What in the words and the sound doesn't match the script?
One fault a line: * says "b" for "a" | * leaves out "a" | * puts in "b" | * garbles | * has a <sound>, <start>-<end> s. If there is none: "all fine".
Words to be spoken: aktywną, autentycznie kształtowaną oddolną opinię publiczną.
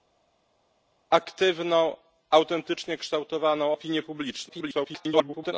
* leaves out "oddolną"
* garbles